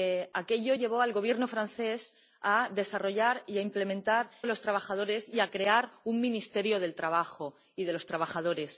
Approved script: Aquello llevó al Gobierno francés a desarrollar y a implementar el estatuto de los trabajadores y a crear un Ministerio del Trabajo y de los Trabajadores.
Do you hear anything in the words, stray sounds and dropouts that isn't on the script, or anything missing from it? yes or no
yes